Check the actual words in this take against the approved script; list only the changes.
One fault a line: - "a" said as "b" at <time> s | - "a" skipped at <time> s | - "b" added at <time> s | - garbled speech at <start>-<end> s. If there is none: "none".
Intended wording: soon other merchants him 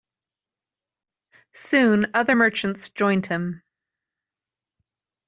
- "joined" added at 2.9 s